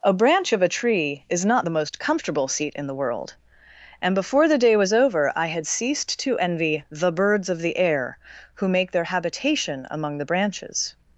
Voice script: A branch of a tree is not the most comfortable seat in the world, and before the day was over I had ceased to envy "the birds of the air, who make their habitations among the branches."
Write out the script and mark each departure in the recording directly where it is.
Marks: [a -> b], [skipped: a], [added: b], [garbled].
A branch of a tree is not the most comfortable seat in the world, and before the day was over I had ceased to envy "the birds of the air, who make their [habitations -> habitation] among the branches."